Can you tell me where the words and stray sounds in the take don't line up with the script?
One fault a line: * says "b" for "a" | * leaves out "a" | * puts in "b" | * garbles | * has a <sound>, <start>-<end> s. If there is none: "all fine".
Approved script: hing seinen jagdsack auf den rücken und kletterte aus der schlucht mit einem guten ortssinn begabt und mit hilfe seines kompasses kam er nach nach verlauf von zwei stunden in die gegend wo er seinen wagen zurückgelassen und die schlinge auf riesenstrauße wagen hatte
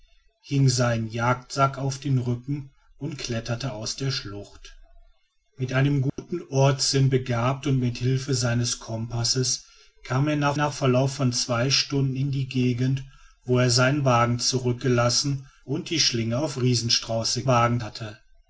* has a dropout, 6.1-6.2 s